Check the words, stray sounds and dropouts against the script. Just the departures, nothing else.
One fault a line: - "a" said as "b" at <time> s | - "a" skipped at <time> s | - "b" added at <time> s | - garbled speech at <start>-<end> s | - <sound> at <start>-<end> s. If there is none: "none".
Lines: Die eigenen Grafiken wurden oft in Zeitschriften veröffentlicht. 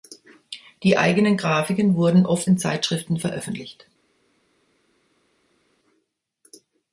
none